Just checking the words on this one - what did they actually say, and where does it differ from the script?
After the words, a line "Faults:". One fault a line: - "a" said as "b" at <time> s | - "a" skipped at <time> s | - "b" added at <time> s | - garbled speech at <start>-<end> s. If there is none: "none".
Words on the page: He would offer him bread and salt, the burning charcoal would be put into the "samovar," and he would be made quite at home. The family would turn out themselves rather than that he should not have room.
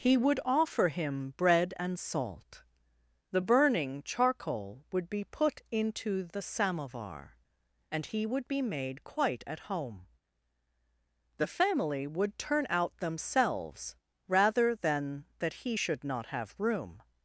He would offer him bread and salt, the burning charcoal would be put into the "samovar," and he would be made quite at home. The family would turn out themselves rather than that he should not have room.
Faults:
none